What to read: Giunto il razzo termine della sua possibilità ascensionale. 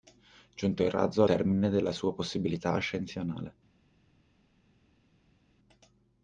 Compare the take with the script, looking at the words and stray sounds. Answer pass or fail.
pass